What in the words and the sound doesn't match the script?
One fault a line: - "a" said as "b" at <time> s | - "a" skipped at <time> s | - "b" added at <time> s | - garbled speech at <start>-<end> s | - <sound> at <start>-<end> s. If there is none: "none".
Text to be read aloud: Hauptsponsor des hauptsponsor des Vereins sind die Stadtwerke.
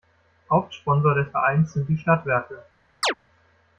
- "hauptsponsor des" skipped at 1.3 s
- chirp at 3.0-3.1 s